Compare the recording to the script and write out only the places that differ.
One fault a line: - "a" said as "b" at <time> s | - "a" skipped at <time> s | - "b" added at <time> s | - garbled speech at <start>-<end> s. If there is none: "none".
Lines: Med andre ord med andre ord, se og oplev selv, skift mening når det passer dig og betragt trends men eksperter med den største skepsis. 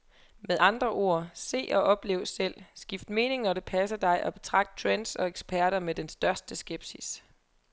- "med andre ord" skipped at 1.3 s
- "men" said as "og" at 5.1 s